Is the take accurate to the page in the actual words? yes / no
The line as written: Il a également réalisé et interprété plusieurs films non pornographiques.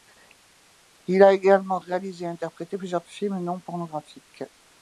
yes